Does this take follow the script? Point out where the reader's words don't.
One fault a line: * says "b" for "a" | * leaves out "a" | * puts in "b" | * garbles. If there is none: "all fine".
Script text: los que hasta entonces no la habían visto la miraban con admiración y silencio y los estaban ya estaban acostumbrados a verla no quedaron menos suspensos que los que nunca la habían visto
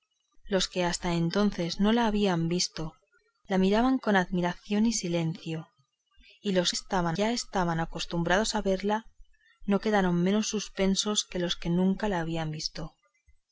all fine